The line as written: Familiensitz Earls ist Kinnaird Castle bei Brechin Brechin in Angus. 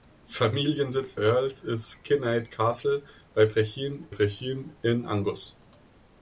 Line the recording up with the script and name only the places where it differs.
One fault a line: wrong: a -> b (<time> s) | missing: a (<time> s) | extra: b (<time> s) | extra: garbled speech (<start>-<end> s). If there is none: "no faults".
no faults